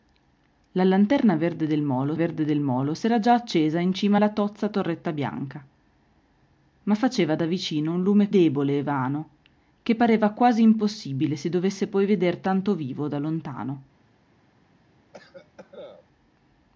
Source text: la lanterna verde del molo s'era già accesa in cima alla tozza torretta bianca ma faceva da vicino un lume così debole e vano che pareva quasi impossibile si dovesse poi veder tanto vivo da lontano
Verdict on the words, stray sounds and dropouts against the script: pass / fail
fail